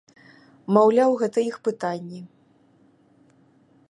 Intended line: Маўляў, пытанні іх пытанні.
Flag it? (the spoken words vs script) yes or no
yes